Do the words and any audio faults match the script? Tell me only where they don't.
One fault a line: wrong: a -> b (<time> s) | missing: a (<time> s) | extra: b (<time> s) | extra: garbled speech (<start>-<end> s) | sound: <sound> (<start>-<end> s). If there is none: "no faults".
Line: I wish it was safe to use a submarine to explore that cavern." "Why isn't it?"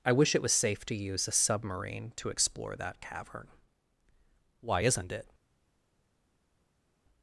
no faults